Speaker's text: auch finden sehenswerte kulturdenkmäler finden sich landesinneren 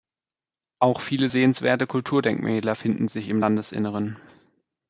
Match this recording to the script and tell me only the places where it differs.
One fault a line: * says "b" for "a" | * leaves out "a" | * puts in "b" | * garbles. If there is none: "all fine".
* says "viele" for "finden"
* puts in "im"